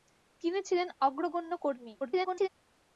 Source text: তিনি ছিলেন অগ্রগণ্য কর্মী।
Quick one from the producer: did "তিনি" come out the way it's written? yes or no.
yes